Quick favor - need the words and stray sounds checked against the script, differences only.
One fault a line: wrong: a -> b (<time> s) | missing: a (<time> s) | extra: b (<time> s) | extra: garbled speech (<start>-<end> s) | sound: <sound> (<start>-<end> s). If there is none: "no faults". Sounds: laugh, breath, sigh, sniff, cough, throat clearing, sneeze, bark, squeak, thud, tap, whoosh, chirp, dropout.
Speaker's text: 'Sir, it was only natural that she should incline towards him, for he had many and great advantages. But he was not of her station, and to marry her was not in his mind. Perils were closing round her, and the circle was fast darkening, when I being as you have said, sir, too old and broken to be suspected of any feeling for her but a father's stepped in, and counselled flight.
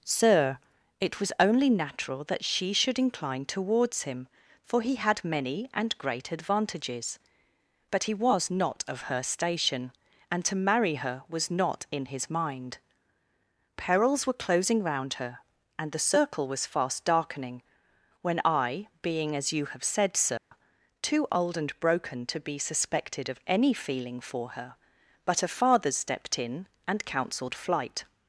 sound: dropout (20.4-20.5 s)